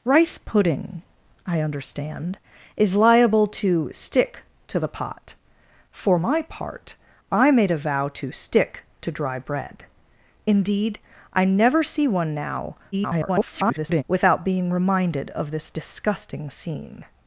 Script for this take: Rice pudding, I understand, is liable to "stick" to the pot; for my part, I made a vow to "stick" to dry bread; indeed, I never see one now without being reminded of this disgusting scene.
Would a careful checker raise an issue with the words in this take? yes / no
yes